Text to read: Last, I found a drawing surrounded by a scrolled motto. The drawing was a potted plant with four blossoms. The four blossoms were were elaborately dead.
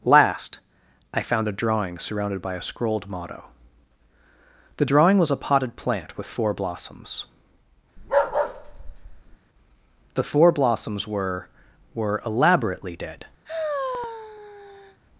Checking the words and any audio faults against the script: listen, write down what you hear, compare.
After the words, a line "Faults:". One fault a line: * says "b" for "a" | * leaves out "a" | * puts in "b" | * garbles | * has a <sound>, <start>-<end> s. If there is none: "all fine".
Last, I found a drawing surrounded by a scrolled motto. The drawing was a potted plant with four blossoms. The four blossoms were were elaborately dead.
Faults:
* has a bark, 8.0-9.4 s
* has a sigh, 13.4-15.0 s